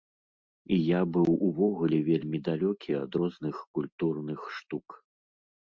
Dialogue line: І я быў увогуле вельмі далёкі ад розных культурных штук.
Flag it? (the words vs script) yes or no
no